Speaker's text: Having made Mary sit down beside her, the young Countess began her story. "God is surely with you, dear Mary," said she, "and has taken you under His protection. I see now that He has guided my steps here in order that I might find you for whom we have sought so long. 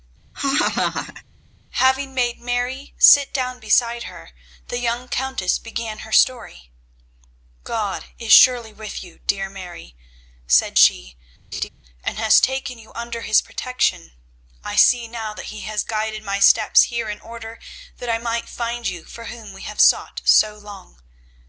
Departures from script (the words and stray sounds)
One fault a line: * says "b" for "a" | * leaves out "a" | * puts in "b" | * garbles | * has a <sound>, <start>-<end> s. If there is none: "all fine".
* has a laugh, 0.3-1.2 s
* has a laugh, 11.5-11.7 s